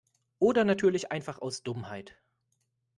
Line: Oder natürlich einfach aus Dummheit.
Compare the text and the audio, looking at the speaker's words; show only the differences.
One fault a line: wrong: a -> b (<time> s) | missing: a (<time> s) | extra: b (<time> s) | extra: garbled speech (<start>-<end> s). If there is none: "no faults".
no faults